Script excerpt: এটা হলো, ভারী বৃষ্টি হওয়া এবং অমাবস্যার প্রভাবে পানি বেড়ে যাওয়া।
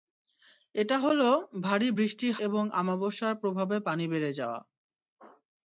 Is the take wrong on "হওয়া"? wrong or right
wrong